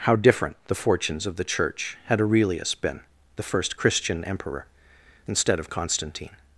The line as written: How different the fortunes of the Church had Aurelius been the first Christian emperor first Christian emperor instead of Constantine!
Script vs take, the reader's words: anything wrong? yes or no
yes